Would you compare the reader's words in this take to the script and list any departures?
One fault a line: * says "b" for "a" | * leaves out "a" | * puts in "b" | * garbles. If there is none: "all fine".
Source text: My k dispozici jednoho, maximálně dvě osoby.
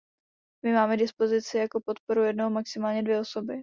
* puts in "máme"
* puts in "jako podporu"